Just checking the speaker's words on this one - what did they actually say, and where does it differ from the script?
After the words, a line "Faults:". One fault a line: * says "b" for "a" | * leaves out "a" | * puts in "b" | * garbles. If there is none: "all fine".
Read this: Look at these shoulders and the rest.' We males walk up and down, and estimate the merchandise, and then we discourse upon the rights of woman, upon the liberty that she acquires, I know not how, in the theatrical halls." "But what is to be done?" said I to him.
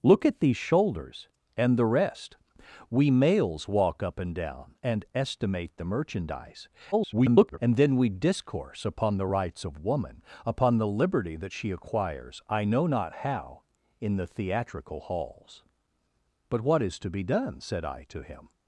Look at these shoulders and the rest.' We males walk up and down, and estimate the merchandise, [garbled] and then we discourse upon the rights of woman, upon the liberty that she acquires, I know not how, in the theatrical halls." "But what is to be done?" said I to him.
Faults:
* garbles